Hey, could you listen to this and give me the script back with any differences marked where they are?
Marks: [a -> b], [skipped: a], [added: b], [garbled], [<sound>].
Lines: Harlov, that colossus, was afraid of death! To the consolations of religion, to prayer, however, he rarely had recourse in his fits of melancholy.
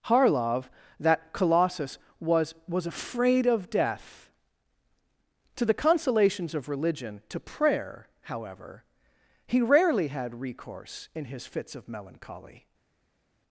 Harlov, that colossus, was [added: was] afraid of death! To the consolations of religion, to prayer, however, he rarely had recourse in his fits of melancholy.